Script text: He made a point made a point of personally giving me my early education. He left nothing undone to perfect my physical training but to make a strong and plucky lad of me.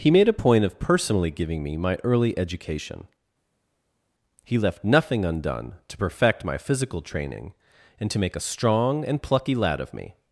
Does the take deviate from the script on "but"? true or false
true